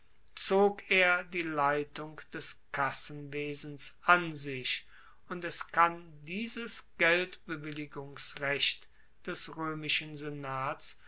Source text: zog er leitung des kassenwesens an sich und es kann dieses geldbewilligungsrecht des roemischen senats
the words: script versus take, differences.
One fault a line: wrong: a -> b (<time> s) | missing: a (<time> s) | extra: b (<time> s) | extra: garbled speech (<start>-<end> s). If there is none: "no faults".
extra: die (1.2 s)